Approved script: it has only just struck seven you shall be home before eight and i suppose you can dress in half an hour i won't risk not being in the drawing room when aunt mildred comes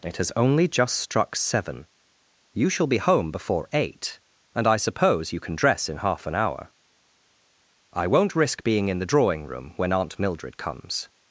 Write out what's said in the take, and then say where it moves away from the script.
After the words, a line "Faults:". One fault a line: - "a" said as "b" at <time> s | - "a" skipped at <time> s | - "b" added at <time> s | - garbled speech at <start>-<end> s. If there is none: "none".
it has only just struck seven you shall be home before eight and i suppose you can dress in half an hour i won't risk being in the drawing room when aunt mildred comes
Faults:
- "not" skipped at 8.6 s